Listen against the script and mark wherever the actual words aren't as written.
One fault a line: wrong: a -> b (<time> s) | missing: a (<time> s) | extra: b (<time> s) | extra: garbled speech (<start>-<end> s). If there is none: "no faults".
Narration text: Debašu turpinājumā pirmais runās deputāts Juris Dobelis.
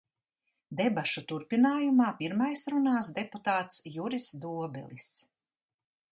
no faults